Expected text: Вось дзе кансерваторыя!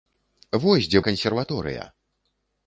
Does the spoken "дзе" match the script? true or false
true